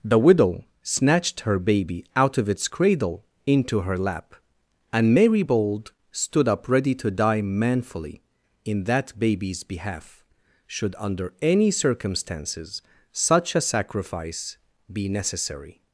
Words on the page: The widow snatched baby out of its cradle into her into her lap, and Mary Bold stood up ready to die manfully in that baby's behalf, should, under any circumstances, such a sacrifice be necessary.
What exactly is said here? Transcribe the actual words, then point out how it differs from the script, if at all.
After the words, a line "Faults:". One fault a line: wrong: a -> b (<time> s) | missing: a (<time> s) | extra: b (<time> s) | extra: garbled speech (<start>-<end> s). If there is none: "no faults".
The widow snatched her baby out of its cradle into her lap, and Mary Bold stood up ready to die manfully in that baby's behalf, should, under any circumstances, such a sacrifice be necessary.
Faults:
extra: her (1.4 s)
missing: into her (4.0 s)